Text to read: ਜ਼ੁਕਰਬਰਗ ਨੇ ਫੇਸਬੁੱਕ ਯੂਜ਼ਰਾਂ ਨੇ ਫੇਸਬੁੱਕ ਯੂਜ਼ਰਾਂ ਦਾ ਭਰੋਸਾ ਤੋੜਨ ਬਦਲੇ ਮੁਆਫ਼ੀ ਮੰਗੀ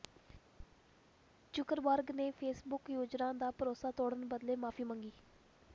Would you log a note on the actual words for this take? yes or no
yes